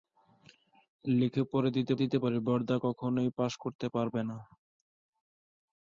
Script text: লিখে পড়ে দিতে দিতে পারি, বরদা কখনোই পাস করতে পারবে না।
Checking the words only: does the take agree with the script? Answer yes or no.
yes